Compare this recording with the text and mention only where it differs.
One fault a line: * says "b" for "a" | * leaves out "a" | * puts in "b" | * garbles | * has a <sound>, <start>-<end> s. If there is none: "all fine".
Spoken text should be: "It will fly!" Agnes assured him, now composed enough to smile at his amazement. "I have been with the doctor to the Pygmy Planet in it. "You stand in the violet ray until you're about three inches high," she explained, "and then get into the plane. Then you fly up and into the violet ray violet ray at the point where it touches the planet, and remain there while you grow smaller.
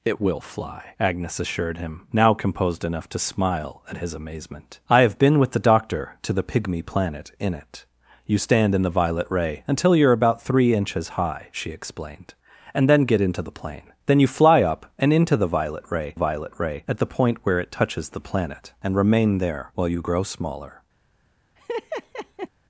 * has a laugh, 21.6-22.5 s